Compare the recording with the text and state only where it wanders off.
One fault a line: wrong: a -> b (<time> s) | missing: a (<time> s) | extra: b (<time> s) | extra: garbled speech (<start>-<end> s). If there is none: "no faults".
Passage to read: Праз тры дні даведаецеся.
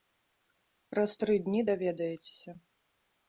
no faults